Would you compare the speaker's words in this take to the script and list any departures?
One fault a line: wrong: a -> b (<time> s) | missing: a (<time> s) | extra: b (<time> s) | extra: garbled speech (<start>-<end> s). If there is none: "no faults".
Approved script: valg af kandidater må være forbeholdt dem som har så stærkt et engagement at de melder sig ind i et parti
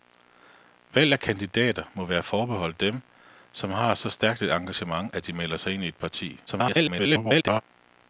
extra: garbled speech (6.5-7.6 s)